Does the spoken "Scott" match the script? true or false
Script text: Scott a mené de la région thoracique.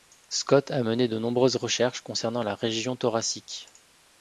true